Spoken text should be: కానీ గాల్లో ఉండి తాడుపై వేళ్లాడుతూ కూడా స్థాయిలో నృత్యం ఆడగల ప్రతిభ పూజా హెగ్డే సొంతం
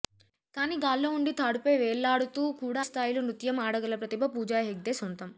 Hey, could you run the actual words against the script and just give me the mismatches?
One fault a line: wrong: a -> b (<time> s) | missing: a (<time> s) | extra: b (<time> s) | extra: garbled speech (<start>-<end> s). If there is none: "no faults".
no faults